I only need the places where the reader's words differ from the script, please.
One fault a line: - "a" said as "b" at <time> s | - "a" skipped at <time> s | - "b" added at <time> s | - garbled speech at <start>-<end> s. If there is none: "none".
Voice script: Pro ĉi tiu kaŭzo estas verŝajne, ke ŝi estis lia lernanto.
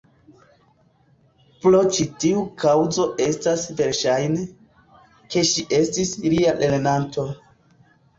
none